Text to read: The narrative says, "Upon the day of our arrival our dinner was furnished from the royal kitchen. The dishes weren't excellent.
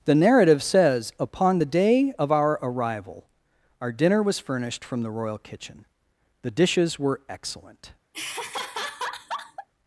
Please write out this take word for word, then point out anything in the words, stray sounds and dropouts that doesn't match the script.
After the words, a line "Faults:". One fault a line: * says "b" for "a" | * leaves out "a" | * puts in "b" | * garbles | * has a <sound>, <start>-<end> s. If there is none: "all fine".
The narrative says, "Upon the day of our arrival our dinner was furnished from the royal kitchen. The dishes were excellent.
Faults:
* says "were" for "weren't"
* has a laugh, 8.1-9.7 s